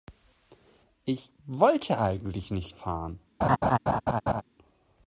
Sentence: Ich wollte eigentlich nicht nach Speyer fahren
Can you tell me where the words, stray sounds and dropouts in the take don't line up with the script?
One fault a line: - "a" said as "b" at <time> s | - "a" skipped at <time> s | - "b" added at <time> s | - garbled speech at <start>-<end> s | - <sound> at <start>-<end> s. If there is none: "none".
- "nach Speyer" skipped at 2.7 s
- laugh at 3.4-4.4 s